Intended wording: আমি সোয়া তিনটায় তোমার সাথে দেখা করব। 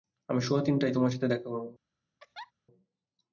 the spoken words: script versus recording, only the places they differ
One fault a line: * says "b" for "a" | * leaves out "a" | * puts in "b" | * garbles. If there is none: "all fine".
all fine